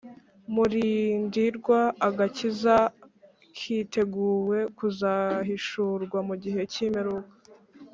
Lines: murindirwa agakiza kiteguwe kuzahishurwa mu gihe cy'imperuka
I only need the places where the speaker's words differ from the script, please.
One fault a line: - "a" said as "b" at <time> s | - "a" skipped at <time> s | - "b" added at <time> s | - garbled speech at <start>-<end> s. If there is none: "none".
none